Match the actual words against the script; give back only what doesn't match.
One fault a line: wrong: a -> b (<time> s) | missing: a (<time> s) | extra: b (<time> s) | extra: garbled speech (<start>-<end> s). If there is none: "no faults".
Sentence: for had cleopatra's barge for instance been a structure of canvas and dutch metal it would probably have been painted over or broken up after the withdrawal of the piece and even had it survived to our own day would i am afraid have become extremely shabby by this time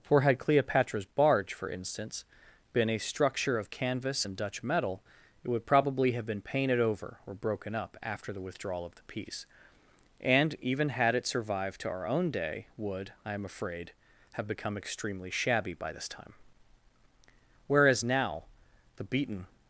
extra: whereas now the beaten (17.7 s)